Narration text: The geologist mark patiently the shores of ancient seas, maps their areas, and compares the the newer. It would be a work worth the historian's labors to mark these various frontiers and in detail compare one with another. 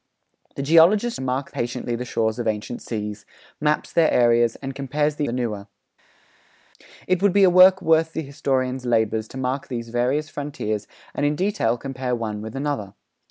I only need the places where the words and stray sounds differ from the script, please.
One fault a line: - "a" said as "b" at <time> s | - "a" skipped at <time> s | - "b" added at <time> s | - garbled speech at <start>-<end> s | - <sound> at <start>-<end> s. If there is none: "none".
none